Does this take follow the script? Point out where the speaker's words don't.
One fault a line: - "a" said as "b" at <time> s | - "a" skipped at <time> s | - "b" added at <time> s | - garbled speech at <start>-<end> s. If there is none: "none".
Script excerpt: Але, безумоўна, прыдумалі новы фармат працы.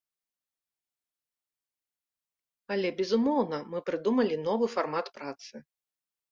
- "мы" added at 3.8 s